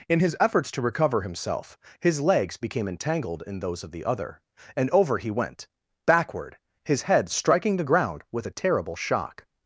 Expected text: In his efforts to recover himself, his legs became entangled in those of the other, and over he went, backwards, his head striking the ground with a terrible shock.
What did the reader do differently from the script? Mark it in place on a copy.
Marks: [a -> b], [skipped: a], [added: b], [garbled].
In his efforts to recover himself, his legs became entangled in those of the other, and over he went, [backwards, -> backward] his head striking the ground with a terrible shock.